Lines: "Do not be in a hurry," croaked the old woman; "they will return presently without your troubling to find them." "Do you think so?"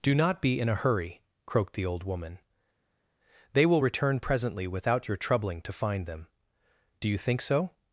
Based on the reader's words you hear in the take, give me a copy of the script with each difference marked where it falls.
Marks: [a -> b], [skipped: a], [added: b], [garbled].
"Do not be in a hurry," croaked the old woman; "they will return presently without your troubling to find them." "Do you think so?"